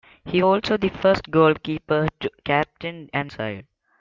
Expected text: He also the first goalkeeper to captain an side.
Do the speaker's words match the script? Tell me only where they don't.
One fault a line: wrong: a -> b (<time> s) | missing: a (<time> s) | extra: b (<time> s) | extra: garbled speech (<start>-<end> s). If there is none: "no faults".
no faults